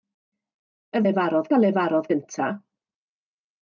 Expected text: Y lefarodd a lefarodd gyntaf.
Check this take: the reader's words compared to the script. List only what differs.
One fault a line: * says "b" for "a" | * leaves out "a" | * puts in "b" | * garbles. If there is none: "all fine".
all fine